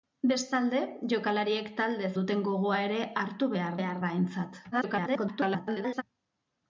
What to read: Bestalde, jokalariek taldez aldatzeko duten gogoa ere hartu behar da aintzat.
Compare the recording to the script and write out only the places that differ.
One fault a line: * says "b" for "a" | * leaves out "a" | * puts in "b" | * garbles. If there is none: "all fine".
* leaves out "aldatzeko"
* puts in "behar"
* garbles